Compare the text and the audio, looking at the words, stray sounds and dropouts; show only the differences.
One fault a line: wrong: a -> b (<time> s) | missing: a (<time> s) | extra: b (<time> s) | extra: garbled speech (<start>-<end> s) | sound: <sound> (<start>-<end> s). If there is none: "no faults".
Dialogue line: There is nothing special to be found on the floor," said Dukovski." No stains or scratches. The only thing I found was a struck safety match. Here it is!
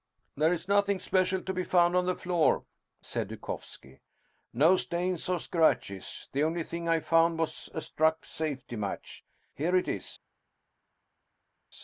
no faults